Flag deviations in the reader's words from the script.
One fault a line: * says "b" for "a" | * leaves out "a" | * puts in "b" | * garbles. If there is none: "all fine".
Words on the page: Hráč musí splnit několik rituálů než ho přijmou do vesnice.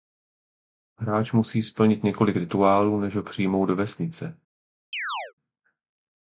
all fine